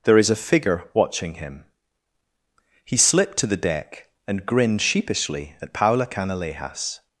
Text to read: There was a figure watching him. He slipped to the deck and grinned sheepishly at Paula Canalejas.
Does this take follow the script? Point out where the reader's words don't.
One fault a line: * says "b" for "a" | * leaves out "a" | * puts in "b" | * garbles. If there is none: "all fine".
* says "is" for "was"